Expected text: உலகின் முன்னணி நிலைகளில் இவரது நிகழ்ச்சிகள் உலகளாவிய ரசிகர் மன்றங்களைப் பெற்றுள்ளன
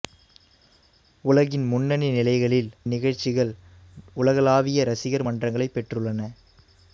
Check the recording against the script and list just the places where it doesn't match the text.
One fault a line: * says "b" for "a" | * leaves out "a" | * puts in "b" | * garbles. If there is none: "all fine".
* leaves out "இவரது"